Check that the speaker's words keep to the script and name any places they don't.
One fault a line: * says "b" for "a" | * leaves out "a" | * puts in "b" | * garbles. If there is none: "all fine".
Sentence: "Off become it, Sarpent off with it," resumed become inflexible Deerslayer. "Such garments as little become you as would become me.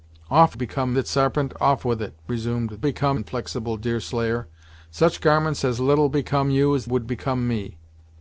all fine